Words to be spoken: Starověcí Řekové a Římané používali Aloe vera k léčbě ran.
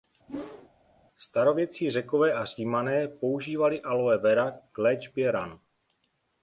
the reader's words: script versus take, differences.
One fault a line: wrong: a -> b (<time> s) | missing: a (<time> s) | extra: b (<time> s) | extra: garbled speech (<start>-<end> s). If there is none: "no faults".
no faults